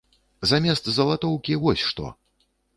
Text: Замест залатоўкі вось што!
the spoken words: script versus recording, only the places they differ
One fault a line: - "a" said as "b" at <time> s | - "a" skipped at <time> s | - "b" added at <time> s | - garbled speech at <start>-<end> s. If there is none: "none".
none